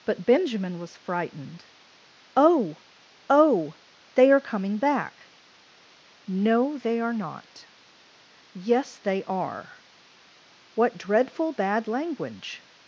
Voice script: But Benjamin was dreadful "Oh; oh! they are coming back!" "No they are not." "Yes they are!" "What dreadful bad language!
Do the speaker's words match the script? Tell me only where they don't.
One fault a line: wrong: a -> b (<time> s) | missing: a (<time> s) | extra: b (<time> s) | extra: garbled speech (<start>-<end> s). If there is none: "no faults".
wrong: dreadful -> frightened (1.0 s)